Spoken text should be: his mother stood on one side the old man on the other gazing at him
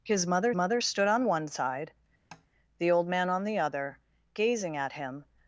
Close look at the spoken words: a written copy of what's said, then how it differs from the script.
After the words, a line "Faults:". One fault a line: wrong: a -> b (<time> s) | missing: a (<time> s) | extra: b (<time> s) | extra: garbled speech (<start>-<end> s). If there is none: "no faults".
his mother mother stood on one side the old man on the other gazing at him
Faults:
extra: mother (0.5 s)